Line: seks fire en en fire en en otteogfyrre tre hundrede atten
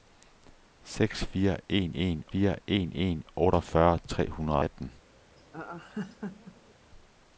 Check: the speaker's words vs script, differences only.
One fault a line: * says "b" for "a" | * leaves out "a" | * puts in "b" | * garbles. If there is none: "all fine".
all fine